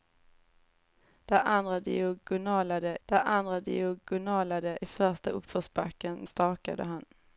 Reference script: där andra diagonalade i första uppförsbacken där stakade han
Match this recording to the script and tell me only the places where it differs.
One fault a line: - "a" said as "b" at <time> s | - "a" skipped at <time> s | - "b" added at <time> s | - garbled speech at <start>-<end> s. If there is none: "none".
- "där andra diagonalade" added at 3.1 s
- "där" skipped at 6.3 s